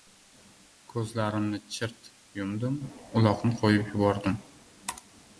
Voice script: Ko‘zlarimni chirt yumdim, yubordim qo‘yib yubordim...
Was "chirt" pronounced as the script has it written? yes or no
yes